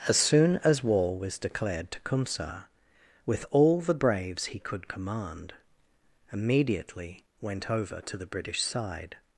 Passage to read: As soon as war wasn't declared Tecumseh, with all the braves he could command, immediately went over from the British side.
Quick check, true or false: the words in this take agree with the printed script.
false